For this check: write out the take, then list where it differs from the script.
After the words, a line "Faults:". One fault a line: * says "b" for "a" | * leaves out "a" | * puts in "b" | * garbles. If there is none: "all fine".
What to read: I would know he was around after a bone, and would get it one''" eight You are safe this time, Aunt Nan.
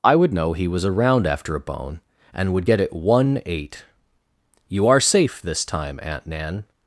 I would know he was around after a bone, and would get it one''" eight You are safe this time, Aunt Nan.
Faults:
all fine